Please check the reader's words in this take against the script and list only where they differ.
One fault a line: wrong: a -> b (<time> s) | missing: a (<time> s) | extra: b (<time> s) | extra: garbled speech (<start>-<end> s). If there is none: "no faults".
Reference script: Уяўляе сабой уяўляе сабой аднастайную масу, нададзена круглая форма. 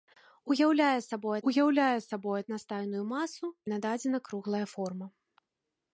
no faults